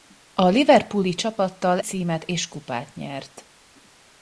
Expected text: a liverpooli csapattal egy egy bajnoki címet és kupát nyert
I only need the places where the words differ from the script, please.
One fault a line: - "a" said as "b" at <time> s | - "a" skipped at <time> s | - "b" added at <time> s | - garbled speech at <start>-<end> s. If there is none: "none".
- "egy egy bajnoki" skipped at 1.8 s